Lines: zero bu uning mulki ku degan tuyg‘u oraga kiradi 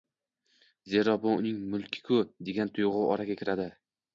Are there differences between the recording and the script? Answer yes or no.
no